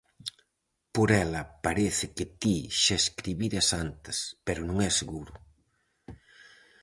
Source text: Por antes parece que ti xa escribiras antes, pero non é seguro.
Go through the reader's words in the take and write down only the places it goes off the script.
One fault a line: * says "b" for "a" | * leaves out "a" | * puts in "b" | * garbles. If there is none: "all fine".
* says "ela" for "antes"